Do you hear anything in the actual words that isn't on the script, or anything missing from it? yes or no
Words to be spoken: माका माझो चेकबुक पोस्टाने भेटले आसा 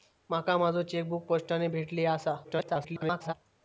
yes